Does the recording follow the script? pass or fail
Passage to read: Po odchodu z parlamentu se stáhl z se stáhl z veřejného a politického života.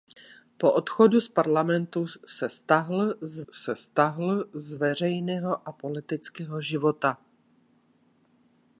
pass